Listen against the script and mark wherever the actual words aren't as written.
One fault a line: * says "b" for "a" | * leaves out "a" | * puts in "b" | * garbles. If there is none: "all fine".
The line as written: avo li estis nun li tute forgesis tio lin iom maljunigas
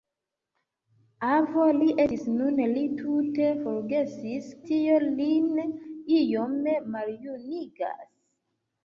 all fine